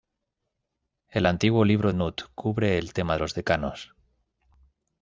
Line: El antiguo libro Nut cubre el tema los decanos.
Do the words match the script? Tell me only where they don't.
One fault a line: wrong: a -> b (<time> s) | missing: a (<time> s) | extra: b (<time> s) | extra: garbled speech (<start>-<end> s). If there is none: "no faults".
no faults